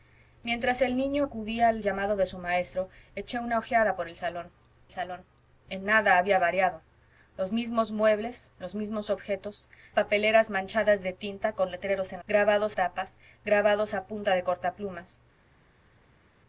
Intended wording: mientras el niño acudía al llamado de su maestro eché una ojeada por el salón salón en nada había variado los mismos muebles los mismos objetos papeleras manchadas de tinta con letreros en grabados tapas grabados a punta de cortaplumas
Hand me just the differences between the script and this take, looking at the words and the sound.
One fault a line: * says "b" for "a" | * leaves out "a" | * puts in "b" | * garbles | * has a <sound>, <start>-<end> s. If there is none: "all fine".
all fine